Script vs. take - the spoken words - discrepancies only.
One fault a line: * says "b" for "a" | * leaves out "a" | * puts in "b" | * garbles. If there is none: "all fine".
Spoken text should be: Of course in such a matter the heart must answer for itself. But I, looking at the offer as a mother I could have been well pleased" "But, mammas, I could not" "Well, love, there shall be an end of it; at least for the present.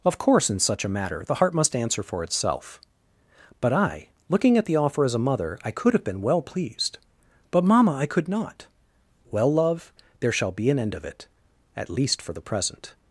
* says "mamma" for "mammas"